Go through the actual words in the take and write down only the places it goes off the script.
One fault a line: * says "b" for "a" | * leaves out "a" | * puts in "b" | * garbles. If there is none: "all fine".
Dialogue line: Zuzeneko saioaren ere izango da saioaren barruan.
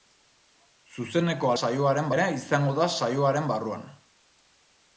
all fine